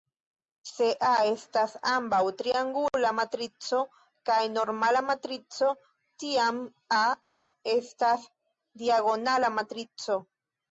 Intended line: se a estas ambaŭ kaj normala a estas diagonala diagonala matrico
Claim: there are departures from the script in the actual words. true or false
true